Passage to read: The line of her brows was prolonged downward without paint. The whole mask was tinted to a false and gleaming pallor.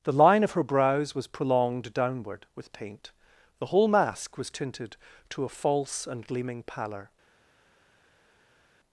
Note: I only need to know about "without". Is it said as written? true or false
false